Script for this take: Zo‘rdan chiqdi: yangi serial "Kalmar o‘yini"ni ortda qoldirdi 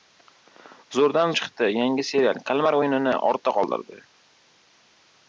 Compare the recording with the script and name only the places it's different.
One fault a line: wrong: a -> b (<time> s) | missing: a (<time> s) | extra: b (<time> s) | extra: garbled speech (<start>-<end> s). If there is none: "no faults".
no faults